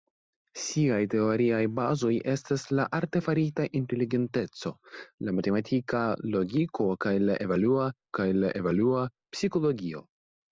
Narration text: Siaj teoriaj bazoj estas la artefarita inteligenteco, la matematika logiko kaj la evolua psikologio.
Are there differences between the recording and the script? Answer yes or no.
yes